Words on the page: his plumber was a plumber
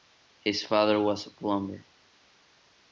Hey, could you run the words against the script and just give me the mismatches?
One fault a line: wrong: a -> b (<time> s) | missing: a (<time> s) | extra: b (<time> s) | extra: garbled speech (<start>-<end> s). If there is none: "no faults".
wrong: plumber -> father (0.6 s)